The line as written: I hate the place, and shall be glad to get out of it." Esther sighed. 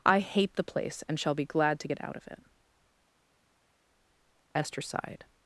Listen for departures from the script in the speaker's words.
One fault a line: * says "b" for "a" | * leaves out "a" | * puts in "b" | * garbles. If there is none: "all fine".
all fine